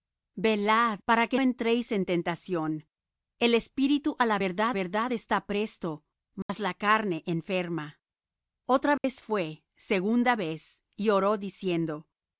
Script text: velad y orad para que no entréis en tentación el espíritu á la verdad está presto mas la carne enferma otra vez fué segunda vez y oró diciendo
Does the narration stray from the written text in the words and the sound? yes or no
yes